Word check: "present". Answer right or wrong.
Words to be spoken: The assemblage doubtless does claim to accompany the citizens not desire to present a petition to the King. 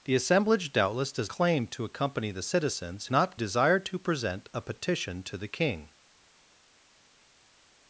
right